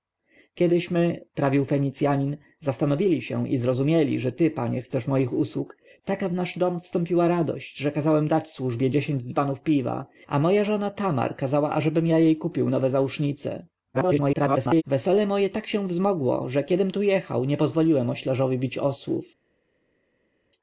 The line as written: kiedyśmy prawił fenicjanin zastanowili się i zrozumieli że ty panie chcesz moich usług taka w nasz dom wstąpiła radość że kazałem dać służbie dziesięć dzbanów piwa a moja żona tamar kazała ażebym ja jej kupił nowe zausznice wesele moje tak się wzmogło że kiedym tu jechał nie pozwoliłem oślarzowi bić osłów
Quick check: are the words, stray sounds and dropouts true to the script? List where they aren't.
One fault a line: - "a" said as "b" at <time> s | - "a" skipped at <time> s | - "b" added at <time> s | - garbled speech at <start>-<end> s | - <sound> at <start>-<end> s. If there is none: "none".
- garbled speech at 13.9-14.8 s